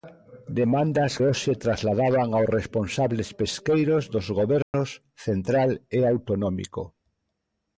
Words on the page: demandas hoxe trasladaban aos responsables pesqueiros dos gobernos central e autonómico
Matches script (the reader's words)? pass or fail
pass